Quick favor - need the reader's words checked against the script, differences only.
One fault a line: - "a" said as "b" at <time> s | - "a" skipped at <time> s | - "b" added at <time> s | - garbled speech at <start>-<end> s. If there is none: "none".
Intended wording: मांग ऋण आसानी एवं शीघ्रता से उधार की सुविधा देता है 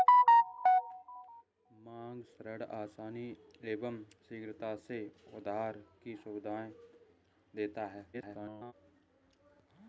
- garbled speech at 8.1-8.7 s